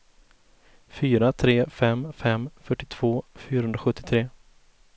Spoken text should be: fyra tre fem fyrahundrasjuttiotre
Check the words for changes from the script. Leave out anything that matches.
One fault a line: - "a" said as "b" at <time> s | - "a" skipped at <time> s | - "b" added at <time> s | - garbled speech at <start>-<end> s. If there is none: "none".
- "fem fyrtiotvå" added at 2.2 s